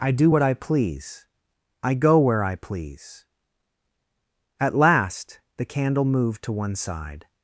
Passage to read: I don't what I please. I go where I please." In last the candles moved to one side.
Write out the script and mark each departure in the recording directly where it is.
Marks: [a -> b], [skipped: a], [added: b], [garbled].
I [don't -> do] what I please. I go where I please." [In -> At] last the [candles -> candle] moved to one side.